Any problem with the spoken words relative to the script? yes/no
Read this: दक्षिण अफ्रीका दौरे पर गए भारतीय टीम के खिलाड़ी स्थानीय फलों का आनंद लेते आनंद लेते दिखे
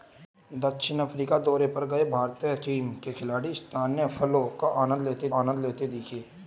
no